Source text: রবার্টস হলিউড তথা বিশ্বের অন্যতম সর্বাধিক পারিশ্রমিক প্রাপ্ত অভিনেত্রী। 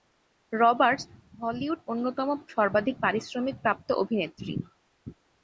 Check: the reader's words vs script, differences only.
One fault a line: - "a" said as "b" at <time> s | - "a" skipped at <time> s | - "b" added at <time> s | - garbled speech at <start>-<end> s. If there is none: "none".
- "তথা বিশ্বের" skipped at 1.8 s